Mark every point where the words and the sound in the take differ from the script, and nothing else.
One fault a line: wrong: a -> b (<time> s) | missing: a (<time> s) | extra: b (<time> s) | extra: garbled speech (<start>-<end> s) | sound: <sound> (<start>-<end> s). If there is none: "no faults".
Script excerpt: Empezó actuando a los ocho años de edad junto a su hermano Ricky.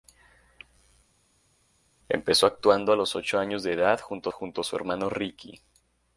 extra: junto (4.3 s)